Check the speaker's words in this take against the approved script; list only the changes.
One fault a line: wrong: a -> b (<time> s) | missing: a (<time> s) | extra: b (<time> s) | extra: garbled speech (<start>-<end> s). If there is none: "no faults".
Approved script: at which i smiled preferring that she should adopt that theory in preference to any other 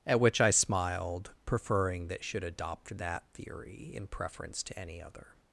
missing: she (2.2 s)